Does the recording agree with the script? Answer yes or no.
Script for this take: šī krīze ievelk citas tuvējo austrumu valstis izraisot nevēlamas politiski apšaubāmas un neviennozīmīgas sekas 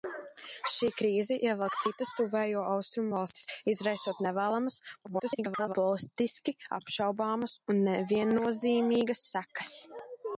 no